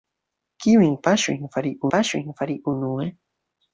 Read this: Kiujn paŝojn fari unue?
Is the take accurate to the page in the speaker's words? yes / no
no